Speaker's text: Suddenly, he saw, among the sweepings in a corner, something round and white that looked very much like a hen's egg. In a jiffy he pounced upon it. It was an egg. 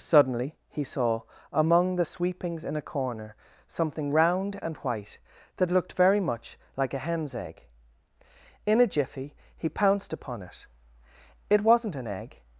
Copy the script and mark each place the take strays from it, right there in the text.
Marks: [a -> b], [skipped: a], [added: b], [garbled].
Suddenly, he saw, among the sweepings in a corner, something round and white that looked very much like a hen's egg. In a jiffy he pounced upon it. It [was -> wasn't] an egg.